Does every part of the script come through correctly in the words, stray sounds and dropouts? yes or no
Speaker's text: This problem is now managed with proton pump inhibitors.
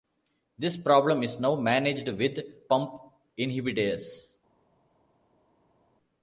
no